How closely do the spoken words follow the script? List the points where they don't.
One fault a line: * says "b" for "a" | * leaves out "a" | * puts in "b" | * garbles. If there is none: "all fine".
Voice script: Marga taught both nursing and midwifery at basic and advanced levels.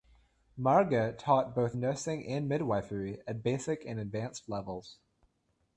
all fine